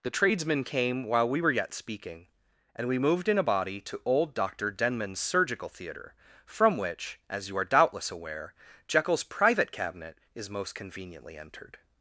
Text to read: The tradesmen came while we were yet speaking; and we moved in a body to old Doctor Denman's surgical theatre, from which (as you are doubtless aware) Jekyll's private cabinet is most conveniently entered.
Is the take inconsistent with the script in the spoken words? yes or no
no